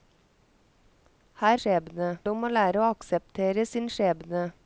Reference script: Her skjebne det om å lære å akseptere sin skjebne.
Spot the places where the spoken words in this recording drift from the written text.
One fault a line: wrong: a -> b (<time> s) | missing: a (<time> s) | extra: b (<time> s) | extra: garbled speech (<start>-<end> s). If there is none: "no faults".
no faults